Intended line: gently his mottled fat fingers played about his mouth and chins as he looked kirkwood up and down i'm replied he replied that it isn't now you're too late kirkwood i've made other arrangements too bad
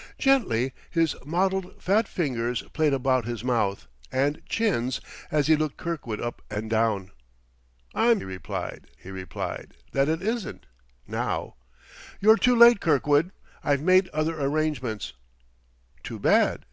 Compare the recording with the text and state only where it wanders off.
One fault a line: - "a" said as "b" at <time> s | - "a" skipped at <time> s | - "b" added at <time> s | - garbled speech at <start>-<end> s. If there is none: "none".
none